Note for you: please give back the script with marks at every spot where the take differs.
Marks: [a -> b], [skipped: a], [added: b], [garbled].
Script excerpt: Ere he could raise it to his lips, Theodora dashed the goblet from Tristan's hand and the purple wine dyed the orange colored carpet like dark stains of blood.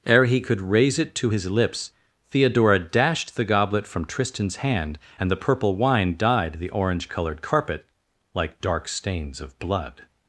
Ere he could raise it to his lips, Theodora dashed the goblet from Tristan's hand and the purple wine dyed the orange colored carpet like dark stains of blood.